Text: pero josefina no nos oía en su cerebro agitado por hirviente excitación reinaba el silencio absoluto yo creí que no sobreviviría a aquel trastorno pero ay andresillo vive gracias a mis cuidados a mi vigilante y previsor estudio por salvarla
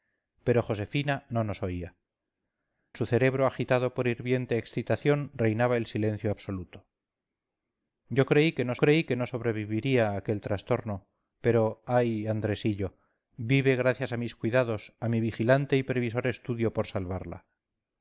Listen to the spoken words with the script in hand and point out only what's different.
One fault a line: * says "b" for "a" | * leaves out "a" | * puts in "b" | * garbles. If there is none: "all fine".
* leaves out "en"
* puts in "creí que no"